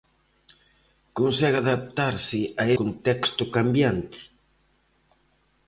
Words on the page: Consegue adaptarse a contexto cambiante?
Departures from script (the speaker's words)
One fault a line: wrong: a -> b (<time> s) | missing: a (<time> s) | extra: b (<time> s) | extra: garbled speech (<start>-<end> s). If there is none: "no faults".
no faults